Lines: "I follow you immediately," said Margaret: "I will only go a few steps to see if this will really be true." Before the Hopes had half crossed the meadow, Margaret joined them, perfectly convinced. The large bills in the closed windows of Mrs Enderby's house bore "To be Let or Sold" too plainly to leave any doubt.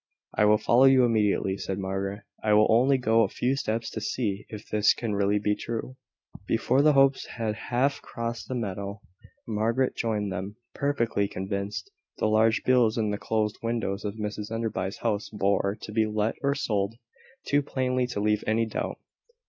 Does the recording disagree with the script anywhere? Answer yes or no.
yes